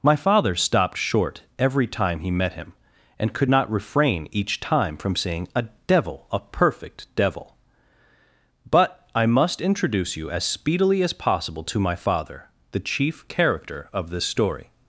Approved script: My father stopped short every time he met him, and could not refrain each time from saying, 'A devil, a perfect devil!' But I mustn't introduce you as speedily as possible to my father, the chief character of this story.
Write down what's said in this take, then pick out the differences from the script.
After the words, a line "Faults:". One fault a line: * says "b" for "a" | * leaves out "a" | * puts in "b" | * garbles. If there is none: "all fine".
My father stopped short every time he met him, and could not refrain each time from saying, 'A devil, a perfect devil!' But I must introduce you as speedily as possible to my father, the chief character of this story.
Faults:
* says "must" for "mustn't"